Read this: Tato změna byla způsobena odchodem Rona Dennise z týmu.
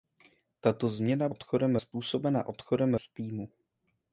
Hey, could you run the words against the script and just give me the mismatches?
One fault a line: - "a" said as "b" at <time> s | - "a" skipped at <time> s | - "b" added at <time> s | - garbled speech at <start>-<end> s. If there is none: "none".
- "byla" said as "odchodem" at 1.3 s
- "Rona Dennise" skipped at 2.9 s